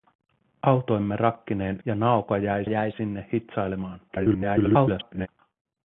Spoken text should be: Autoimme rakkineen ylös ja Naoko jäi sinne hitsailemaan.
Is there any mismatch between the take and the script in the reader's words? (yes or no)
yes